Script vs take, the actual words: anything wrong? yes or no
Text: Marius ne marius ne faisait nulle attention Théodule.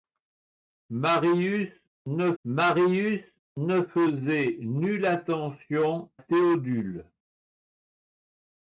no